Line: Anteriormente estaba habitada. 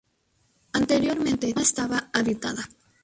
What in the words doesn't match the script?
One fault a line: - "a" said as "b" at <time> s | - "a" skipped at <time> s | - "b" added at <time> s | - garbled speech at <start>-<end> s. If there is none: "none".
none